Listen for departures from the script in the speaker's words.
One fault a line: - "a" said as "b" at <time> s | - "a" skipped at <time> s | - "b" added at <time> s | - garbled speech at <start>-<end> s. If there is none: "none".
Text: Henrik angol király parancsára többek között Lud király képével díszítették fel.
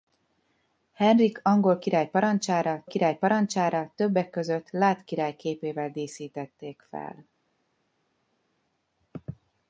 - "király parancsára" added at 2.9 s